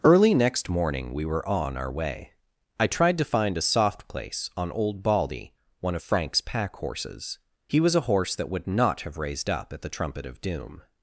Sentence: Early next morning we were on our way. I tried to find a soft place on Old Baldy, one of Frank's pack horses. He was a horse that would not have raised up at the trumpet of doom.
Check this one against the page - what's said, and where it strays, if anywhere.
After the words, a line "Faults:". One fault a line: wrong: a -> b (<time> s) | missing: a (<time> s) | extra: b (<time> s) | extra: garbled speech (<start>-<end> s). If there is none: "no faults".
Early next morning we were on our way. I tried to find a soft place on Old Baldy, one of Frank's pack horses. He was a horse that would not have raised up at the trumpet of doom.
Faults:
no faults